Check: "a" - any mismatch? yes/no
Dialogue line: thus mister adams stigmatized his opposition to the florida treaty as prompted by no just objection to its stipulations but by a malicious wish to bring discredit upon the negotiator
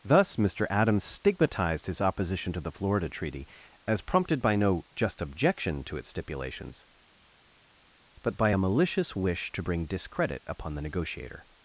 no